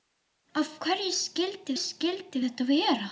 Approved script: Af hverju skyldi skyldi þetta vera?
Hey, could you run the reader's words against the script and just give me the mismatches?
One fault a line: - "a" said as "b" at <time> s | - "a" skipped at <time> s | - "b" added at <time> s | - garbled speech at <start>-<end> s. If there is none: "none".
none